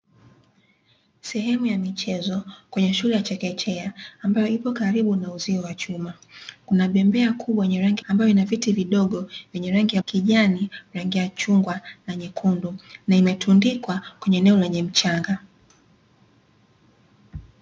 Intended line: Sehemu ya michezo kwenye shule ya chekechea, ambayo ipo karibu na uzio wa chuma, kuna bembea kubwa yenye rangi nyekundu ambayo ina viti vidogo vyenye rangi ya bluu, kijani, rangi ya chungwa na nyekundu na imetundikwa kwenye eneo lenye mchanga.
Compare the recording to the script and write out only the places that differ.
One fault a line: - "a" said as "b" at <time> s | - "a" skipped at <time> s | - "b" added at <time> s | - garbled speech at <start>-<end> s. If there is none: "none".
- "nyekundu" skipped at 8.1 s
- "bluu" skipped at 10.0 s